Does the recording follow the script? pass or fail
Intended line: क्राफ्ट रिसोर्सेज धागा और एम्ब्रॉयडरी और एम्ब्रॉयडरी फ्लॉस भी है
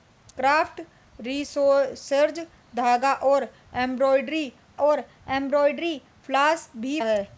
pass